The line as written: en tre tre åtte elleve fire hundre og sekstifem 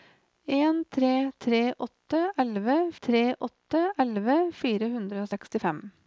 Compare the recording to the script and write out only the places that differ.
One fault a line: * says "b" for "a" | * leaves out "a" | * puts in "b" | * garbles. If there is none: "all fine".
* puts in "tre åtte elleve"